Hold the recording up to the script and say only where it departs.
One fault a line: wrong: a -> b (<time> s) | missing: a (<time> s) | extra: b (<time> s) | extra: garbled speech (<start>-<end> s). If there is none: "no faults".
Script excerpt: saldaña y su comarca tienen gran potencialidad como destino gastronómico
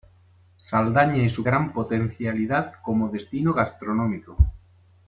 missing: comarca tienen (1.4 s)